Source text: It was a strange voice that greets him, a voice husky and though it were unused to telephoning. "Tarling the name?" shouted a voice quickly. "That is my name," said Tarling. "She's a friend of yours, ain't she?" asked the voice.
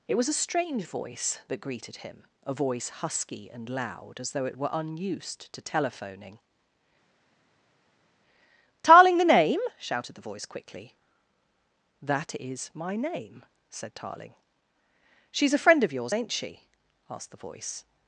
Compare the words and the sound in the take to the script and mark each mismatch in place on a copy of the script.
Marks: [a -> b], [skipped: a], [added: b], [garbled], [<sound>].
It was a strange voice that [greets -> greeted] him, a voice husky and [added: loud as] though it were unused to telephoning. "Tarling the name?" shouted [a -> the] voice quickly. "That is my name," said Tarling. "She's a friend of yours, ain't she?" asked the voice.